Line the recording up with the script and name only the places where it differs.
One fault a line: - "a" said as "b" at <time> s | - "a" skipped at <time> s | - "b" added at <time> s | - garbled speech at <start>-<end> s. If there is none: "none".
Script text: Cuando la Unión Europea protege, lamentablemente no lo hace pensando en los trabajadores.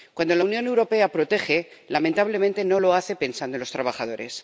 none